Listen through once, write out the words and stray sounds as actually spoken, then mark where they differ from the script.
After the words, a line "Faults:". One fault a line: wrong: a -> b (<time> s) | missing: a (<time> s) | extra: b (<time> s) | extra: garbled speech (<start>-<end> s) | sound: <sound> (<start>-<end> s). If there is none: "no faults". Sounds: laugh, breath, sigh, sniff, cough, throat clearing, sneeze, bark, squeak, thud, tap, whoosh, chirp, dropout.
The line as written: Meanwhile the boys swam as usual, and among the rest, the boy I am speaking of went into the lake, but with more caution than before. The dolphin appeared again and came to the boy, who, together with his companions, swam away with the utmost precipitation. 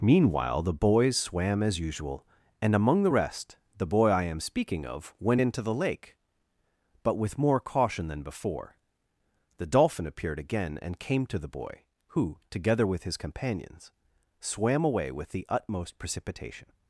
Meanwhile the boys swam as usual, and among the rest, the boy I am speaking of went into the lake, but with more caution than before. The dolphin appeared again and came to the boy, who, together with his companions, swam away with the utmost precipitation.
Faults:
no faults